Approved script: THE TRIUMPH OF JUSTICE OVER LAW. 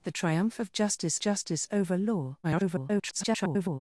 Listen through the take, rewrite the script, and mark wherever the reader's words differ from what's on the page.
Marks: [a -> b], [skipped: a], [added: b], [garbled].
THE TRIUMPH OF JUSTICE [added: JUSTICE] OVER LAW. [garbled]